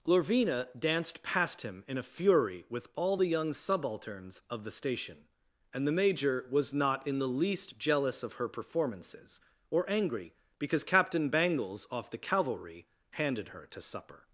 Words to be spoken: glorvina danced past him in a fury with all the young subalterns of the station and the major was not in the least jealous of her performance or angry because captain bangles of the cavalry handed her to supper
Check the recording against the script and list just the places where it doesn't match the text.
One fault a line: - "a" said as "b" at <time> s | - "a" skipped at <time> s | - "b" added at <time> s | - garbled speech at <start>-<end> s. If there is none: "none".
- "performance" said as "performances" at 8.5 s
- "of" said as "off" at 11.9 s